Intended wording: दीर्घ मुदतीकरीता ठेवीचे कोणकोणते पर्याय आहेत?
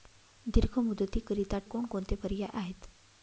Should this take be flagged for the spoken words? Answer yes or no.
yes